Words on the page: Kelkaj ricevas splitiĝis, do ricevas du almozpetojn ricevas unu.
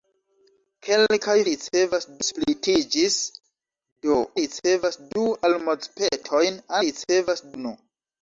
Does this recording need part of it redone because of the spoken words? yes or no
no